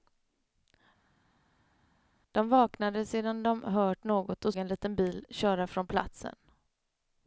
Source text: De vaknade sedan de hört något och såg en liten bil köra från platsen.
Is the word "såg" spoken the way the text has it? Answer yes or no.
no